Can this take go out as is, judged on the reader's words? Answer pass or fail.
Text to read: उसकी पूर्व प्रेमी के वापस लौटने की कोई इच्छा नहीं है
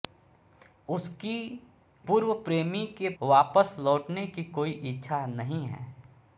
pass